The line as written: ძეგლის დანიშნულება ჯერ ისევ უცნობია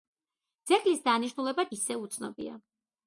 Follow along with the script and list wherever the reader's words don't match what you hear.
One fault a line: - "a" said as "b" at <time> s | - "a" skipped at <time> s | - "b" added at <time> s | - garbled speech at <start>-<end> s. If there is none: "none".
- "ჯერ" skipped at 1.7 s